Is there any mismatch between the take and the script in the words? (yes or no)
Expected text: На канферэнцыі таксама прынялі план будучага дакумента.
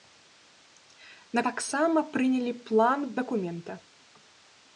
yes